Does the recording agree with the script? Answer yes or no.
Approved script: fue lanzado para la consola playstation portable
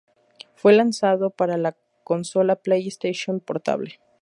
yes